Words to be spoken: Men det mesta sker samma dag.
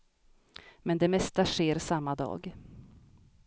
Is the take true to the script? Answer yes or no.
yes